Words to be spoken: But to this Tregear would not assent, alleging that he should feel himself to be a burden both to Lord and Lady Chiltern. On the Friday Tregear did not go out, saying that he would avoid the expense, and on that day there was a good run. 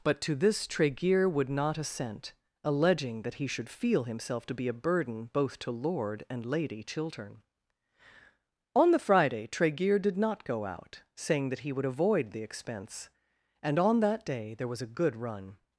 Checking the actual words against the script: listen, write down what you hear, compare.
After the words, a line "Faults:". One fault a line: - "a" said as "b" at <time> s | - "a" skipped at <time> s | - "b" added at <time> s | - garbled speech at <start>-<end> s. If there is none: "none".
But to this Tregear would not assent, alleging that he should feel himself to be a burden both to Lord and Lady Chiltern. On the Friday Tregear did not go out, saying that he would avoid the expense, and on that day there was a good run.
Faults:
none